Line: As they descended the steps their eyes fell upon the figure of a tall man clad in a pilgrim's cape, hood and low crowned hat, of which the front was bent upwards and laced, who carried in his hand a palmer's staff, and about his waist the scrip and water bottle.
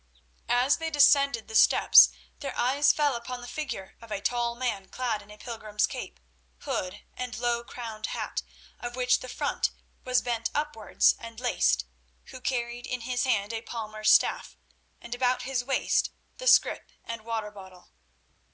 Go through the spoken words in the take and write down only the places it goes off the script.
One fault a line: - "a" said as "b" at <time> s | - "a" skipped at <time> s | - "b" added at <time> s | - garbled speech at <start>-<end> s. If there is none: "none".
none